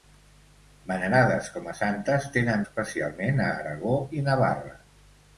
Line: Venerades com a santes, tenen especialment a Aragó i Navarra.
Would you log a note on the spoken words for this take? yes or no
no